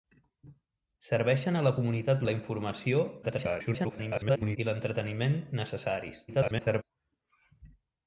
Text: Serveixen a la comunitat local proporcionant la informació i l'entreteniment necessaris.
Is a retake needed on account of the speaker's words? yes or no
yes